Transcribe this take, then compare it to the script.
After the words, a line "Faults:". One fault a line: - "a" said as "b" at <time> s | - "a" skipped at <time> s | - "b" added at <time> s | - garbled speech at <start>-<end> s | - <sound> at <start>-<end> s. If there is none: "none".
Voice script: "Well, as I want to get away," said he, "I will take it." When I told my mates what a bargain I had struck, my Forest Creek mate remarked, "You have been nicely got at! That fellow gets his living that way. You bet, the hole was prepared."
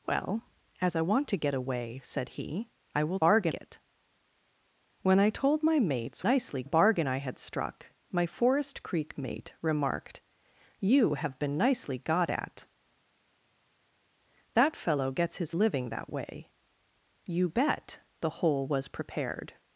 "Well, as I want to get away," said he, "I will bargain it." When I told my mates nicely a bargain I had struck, my Forest Creek mate remarked, "You have been nicely got at! That fellow gets his living that way. You bet, the hole was prepared."
Faults:
- "take" said as "bargain" at 3.2 s
- "what" said as "nicely" at 6.2 s